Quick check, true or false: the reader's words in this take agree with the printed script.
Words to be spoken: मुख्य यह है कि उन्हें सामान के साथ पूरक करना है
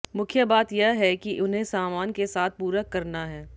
false